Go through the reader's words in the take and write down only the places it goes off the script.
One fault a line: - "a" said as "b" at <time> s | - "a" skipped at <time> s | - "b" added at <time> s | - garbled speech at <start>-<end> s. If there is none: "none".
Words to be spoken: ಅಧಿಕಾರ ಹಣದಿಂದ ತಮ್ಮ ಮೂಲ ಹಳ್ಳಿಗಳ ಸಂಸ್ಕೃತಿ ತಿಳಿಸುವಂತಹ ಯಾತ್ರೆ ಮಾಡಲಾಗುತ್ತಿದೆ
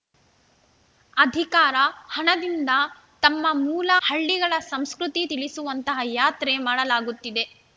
none